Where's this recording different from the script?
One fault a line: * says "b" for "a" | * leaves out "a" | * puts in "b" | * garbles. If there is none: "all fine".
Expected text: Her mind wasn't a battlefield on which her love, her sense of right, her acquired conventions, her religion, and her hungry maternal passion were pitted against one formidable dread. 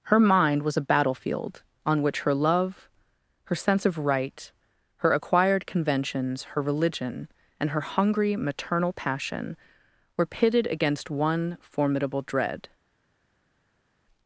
* says "was" for "wasn't"